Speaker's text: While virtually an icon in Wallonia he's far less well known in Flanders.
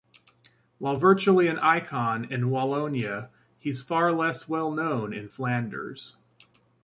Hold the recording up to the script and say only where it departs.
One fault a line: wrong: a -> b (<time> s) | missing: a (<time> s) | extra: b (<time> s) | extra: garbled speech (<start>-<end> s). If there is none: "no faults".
no faults